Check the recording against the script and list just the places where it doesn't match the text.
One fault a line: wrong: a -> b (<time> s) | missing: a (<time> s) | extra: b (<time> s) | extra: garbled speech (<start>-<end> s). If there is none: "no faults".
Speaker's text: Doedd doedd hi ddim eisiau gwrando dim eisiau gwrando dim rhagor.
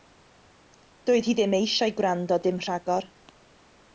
missing: doedd (1.3 s)
missing: eisiau gwrando dim (2.6 s)